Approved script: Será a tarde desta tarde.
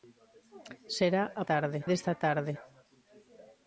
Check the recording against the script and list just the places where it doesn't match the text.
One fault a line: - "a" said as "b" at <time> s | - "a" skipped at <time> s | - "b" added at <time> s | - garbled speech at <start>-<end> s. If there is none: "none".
none